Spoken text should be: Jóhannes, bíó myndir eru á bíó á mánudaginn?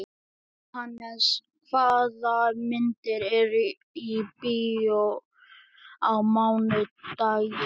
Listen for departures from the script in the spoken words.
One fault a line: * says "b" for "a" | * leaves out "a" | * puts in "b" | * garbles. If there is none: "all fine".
* says "hvaða" for "bíó"
* says "í" for "á"